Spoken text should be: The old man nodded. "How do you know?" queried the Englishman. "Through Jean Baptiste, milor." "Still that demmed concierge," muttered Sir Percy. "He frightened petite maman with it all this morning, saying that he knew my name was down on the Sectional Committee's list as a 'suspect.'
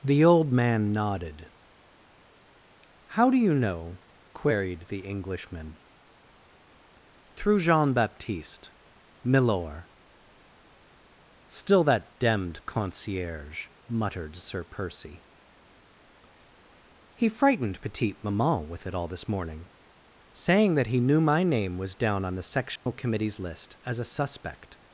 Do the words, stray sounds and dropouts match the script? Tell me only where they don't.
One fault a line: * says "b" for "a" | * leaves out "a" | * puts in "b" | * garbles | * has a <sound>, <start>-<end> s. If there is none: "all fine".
* has a dropout, 22.8-22.9 s